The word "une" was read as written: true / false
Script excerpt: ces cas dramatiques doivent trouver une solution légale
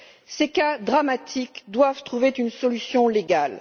true